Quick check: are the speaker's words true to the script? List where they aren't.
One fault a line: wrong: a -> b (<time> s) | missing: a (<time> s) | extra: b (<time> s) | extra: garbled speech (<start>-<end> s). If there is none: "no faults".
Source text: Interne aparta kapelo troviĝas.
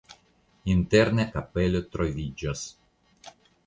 missing: aparta (1.2 s)